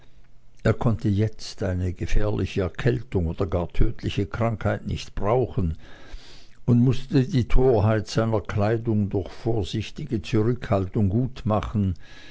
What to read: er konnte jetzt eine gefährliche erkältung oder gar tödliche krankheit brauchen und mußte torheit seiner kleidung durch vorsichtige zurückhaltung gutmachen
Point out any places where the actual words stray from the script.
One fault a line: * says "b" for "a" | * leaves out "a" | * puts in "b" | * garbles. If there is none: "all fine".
* puts in "nicht"
* puts in "die"